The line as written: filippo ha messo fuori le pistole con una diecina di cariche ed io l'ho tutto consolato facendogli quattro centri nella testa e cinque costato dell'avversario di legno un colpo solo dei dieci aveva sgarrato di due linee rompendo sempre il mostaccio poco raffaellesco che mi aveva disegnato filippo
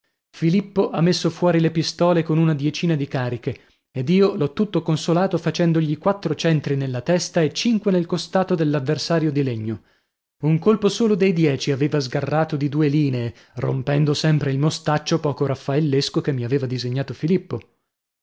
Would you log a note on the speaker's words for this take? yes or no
yes